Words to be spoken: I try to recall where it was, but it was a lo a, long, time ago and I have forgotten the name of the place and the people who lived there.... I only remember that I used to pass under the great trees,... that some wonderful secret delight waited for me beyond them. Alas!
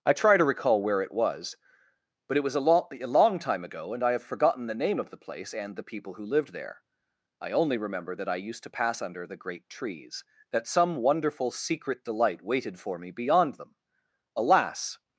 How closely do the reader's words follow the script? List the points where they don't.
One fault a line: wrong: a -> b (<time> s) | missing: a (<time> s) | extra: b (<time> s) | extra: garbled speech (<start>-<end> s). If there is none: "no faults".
no faults